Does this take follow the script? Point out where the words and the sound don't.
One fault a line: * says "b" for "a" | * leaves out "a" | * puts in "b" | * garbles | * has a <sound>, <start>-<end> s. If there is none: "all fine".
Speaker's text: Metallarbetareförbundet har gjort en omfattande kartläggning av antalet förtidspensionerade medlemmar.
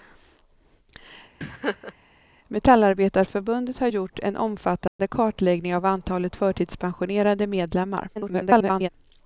* has a laugh, 1.4-1.9 s
* has a dropout, 4.9-5.0 s
* garbles